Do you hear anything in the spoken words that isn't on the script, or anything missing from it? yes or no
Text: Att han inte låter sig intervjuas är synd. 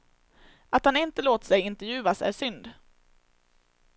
no